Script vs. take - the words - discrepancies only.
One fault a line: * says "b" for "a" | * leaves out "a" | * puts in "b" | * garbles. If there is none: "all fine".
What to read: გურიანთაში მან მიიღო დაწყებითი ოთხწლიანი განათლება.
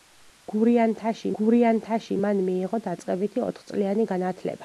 * puts in "გურიანთაში"